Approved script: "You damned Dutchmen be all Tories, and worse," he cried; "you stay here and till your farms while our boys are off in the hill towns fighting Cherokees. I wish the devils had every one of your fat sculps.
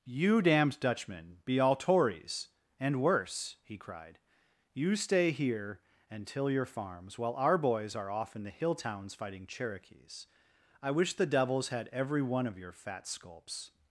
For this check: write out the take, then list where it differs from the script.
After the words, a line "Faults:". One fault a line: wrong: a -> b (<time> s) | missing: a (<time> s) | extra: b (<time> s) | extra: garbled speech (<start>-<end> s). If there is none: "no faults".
"You damned Dutchmen be all Tories, and worse," he cried; "you stay here and till your farms while our boys are off in the hill towns fighting Cherokees. I wish the devils had every one of your fat sculps.
Faults:
no faults